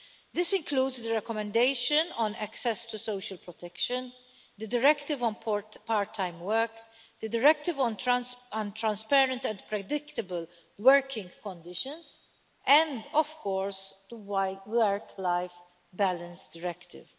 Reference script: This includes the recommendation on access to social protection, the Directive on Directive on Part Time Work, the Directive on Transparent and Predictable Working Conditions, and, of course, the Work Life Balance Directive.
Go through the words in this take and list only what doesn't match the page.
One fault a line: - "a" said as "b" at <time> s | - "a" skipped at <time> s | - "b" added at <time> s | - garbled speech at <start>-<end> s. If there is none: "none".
- "Directive on" skipped at 5.3 s